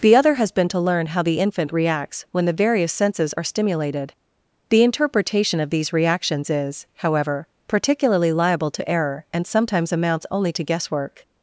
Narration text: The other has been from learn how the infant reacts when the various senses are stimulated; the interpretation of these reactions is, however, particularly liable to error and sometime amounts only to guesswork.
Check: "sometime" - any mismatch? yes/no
yes